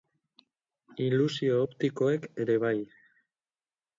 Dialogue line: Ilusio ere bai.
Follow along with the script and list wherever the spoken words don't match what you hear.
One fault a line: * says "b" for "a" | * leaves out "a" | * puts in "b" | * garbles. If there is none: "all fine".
* puts in "optikoek"